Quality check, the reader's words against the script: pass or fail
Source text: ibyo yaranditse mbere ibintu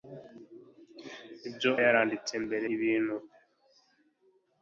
pass